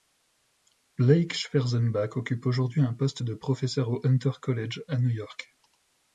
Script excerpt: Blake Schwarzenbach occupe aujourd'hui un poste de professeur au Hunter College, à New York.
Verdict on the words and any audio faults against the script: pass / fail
pass